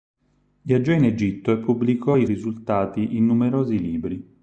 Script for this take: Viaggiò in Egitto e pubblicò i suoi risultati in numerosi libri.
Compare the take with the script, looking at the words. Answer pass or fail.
fail